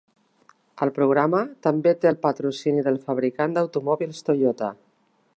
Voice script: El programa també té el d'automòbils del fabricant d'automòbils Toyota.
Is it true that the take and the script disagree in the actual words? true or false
true